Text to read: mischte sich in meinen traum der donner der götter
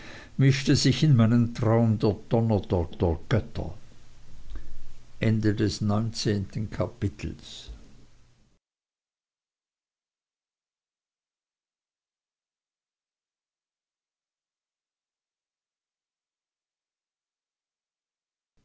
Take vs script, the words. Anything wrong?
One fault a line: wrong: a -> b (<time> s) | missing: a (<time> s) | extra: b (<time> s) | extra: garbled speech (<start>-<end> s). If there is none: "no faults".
extra: der (2.9 s)